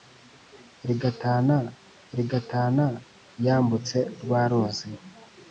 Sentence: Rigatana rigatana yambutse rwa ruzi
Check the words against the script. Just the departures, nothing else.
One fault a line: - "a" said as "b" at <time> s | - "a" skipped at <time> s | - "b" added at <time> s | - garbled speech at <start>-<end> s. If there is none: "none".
none